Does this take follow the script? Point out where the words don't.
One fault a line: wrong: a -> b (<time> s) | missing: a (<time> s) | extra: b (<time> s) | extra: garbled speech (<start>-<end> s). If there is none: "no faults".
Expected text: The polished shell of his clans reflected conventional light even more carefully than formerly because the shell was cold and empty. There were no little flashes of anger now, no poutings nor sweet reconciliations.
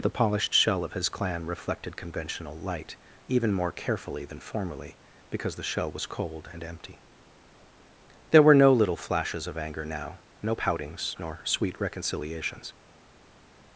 wrong: clans -> clan (1.1 s)